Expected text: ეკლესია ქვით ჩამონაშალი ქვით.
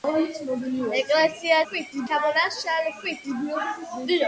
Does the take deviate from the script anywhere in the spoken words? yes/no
no